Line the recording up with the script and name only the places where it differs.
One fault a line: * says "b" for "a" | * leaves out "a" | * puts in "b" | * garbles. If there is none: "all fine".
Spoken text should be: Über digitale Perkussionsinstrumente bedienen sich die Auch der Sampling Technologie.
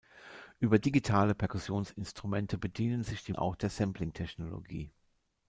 all fine